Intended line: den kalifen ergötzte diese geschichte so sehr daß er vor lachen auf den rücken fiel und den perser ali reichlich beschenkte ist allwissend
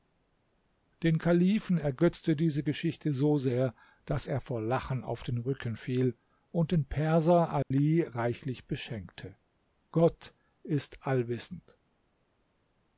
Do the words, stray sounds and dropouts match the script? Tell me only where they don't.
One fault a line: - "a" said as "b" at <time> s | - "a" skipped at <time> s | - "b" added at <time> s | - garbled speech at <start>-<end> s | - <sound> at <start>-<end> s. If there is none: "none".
- dropout at 7.6-7.7 s
- "gott" added at 9.9 s